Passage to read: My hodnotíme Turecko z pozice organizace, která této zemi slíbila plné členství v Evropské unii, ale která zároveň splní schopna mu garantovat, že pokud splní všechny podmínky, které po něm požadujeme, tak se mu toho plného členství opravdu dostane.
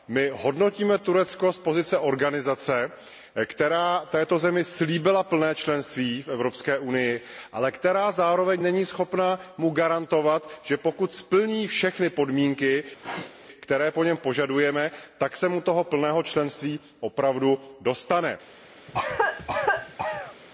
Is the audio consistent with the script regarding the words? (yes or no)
no